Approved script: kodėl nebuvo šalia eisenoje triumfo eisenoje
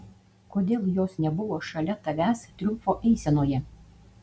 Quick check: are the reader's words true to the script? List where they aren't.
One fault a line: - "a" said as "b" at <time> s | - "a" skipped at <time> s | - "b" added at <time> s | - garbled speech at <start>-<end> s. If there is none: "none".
- "jos" added at 0.9 s
- "eisenoje" said as "tavęs" at 2.1 s